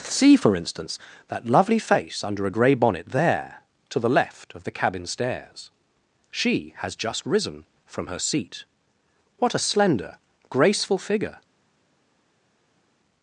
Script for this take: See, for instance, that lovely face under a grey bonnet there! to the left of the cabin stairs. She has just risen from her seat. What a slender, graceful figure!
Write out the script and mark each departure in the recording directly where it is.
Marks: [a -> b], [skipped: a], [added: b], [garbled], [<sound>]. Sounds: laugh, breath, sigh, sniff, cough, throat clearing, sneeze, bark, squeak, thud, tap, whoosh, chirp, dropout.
See, for instance, that lovely face under a grey bonnet there! to the left of the cabin stairs. She has just risen from her seat. What a slender, graceful figure!